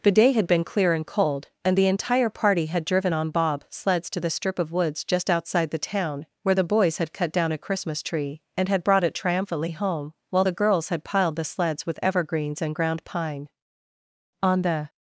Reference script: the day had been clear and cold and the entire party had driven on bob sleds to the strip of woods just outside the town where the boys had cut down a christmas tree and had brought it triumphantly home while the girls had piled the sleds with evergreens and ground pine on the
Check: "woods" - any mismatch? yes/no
no